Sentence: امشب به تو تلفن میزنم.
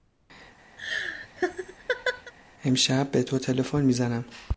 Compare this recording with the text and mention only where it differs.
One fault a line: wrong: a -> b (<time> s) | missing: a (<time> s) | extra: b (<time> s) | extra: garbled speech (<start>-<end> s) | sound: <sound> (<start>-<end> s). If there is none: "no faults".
sound: laugh (0.8-2.3 s)